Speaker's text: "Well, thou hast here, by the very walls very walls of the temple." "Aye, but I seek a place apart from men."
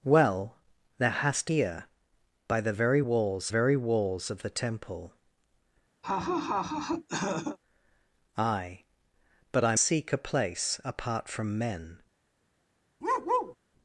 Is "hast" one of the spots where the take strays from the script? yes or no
no